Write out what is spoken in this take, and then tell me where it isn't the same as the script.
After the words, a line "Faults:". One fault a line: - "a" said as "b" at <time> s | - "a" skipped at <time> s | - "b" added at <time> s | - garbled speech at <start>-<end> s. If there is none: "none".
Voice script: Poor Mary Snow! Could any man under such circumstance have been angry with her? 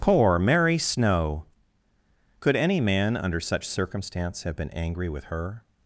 Poor Mary Snow! Could any man under such circumstance have been angry with her?
Faults:
none